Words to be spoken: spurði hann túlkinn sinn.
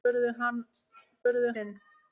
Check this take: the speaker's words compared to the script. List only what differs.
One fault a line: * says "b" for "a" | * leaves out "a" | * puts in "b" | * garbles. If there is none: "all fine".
* says "spurði" for "túlkinn"